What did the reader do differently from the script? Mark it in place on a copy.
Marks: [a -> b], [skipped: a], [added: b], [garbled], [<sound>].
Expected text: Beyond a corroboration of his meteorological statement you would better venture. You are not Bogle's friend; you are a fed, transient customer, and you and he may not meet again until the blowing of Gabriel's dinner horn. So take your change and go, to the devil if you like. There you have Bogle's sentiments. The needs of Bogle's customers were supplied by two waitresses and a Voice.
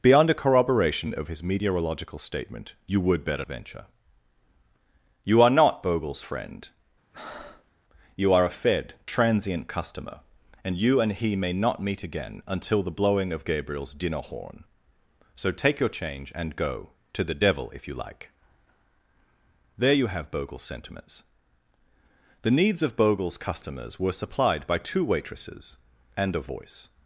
Beyond a corroboration of his meteorological statement you would better venture. You are not Bogle's friend; [breath] you are a fed, transient customer, and you and he may not meet again until the blowing of Gabriel's dinner horn. So take your change and go, to the devil if you like. There you have Bogle's sentiments. The needs of Bogle's customers were supplied by two waitresses and a Voice.